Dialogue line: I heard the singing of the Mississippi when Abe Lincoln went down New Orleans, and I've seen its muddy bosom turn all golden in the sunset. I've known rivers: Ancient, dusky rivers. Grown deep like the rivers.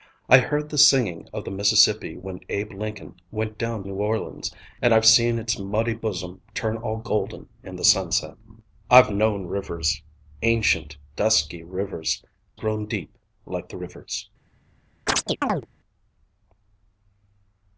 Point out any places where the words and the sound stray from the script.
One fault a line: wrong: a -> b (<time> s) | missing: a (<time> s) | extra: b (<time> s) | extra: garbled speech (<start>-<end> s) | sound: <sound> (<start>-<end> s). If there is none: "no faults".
sound: chirp (15.1-15.7 s)